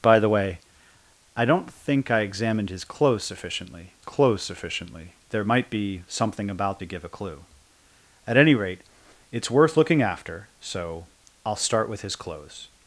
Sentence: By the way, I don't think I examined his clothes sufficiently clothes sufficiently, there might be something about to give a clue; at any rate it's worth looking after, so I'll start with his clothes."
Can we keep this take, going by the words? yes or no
yes